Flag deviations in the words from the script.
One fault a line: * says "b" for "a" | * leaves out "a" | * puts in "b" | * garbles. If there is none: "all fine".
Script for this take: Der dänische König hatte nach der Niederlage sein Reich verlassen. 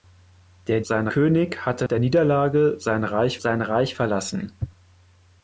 * says "sein" for "dänische"
* leaves out "nach"
* puts in "sein Reich"